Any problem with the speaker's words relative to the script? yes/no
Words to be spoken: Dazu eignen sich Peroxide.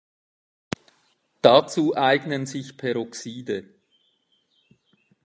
no